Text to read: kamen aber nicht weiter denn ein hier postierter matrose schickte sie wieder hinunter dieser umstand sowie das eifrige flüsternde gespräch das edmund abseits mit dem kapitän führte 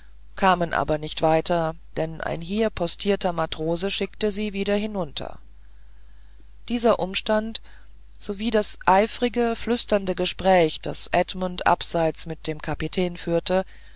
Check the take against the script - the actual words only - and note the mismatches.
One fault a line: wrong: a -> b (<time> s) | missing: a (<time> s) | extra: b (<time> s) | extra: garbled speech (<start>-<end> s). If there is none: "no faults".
no faults